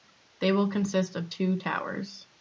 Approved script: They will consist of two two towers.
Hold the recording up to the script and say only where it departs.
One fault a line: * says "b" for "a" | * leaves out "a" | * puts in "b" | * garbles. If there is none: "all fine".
* leaves out "two"